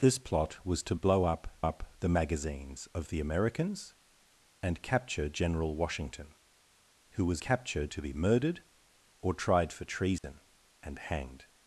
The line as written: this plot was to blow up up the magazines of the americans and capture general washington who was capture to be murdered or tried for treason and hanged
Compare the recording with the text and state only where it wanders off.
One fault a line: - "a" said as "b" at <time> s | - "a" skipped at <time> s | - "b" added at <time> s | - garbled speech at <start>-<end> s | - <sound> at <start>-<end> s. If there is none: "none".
- dropout at 10.2-10.2 s